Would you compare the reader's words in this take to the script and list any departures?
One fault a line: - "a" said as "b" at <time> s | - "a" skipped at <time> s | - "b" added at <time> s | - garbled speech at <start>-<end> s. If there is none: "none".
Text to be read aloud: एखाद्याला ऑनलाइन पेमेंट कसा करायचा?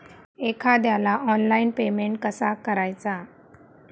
none